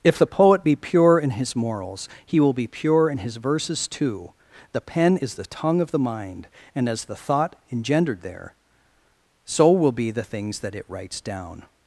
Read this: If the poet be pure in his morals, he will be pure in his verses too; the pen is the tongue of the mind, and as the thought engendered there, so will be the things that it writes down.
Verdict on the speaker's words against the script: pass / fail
pass